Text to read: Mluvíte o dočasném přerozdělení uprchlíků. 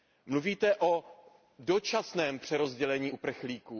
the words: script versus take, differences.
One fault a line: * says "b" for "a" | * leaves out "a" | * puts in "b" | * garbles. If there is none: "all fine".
all fine